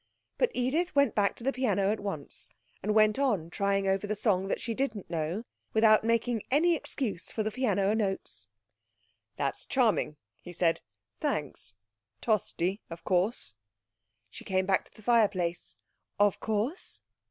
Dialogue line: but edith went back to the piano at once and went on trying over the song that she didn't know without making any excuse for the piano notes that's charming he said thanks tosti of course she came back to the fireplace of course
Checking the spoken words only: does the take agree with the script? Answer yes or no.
yes